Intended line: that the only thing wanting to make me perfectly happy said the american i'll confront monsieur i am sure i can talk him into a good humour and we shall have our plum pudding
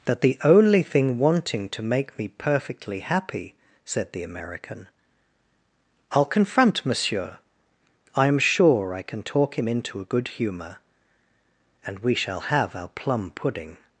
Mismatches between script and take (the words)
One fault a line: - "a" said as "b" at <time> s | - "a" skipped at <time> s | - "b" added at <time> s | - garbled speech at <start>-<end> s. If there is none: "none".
none